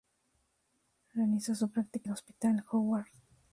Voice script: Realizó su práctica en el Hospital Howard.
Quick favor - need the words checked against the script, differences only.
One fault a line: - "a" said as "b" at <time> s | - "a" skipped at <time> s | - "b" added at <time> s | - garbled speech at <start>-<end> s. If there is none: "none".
- "en" skipped at 2.1 s